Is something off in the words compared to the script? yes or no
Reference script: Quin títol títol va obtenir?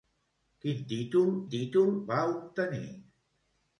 no